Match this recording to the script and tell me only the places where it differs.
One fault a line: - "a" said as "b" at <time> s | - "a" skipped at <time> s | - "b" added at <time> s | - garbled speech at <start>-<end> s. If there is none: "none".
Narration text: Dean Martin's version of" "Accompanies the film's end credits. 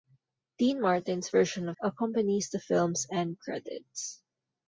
none